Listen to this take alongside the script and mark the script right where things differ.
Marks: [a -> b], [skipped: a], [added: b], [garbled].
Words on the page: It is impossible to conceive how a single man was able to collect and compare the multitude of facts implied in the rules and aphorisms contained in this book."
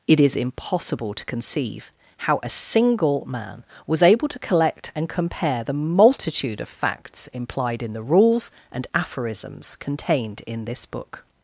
It is impossible to conceive how a single man was able to collect and compare the multitude of facts implied in the rules and aphorisms contained in this book."